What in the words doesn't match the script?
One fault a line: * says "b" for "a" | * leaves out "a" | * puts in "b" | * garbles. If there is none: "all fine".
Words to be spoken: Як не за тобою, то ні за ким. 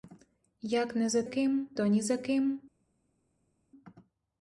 * says "ким" for "тобою"